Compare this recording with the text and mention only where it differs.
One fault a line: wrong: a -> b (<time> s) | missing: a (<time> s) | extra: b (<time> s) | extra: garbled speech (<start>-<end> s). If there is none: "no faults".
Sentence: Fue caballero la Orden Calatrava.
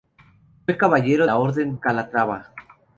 no faults